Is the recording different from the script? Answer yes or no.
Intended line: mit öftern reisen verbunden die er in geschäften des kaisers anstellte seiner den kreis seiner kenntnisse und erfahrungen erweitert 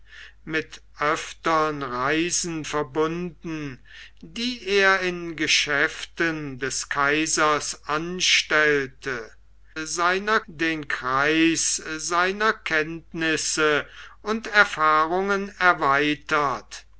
no